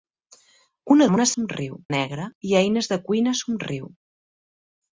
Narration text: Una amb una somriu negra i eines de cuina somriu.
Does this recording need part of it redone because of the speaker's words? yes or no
no